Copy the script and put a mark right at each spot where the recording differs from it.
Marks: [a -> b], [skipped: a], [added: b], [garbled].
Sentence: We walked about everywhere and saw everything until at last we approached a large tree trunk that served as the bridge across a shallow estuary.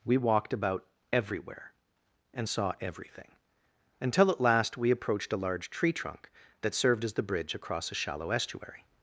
We walked about everywhere and saw everything until at last we approached a large tree trunk that served as the bridge across a shallow estuary.